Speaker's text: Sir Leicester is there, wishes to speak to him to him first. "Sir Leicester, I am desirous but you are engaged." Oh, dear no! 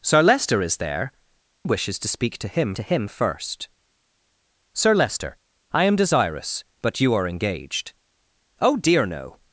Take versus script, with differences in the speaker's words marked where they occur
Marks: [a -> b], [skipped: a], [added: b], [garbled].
Sir Leicester is there, wishes to speak to him to him first. "Sir Leicester, I am desirous but you are engaged." Oh, dear no!